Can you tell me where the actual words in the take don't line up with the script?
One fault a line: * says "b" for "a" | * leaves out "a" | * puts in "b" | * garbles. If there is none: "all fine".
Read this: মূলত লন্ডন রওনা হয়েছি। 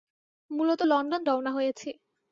all fine